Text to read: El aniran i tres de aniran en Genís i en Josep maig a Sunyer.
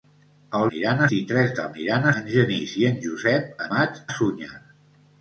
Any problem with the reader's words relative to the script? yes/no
no